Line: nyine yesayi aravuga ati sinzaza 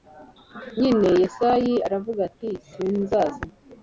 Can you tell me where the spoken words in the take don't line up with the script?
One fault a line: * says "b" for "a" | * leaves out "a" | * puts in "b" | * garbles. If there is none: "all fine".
all fine